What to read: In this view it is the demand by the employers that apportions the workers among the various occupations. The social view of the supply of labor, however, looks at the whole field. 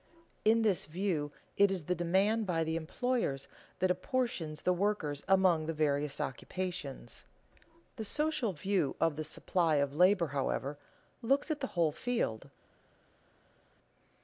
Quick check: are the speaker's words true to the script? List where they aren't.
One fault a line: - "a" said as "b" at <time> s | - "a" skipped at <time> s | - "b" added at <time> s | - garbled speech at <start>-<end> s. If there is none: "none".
none